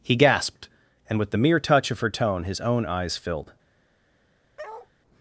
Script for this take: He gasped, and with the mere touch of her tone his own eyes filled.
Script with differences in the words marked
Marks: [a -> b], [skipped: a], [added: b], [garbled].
He gasped, and with the mere touch of her tone his own eyes filled.